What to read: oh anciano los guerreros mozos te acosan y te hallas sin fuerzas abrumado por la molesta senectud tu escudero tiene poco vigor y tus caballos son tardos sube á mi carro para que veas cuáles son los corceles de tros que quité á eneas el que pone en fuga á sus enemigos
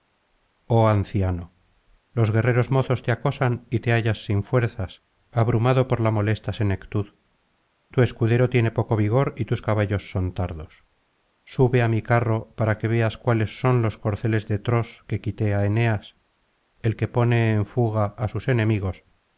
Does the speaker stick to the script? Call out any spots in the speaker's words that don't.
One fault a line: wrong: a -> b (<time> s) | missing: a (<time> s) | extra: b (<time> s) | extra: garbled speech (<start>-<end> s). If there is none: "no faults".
no faults